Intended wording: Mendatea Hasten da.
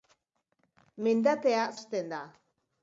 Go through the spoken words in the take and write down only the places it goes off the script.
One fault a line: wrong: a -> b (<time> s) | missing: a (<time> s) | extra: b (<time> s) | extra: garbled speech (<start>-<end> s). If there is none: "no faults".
no faults